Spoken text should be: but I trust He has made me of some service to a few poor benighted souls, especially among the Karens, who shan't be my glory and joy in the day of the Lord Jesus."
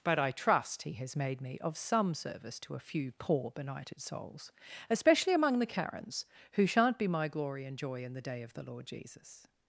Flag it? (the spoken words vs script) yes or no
no